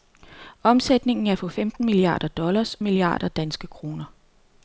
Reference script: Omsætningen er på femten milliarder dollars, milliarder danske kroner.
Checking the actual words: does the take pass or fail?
pass